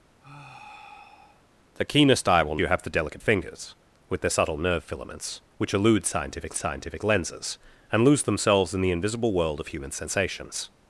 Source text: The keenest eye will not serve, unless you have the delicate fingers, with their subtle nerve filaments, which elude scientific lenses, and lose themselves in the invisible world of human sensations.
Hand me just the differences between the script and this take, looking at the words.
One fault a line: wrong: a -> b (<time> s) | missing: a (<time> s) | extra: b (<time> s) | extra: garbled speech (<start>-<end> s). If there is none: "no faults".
missing: not serve unless (2.6 s)
extra: scientific (6.5 s)